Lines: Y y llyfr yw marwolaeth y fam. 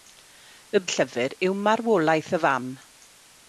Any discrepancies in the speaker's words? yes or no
no